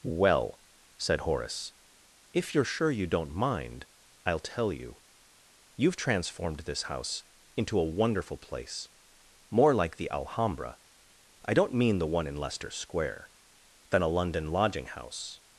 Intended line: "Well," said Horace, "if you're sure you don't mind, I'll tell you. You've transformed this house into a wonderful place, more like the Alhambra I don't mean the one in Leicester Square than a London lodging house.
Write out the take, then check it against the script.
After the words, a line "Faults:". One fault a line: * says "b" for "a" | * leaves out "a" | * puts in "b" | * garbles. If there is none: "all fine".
"Well," said Horace, "if you're sure you don't mind, I'll tell you. You've transformed this house into a wonderful place, more like the Alhambra I don't mean the one in Leicester Square than a London lodging house.
Faults:
all fine